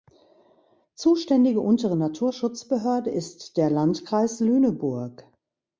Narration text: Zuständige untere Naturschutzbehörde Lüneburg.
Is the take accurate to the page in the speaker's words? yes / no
no